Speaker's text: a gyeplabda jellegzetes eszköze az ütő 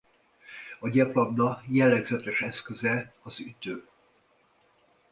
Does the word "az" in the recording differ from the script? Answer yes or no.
no